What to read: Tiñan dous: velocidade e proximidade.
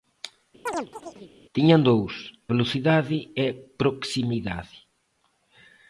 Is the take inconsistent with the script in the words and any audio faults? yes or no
yes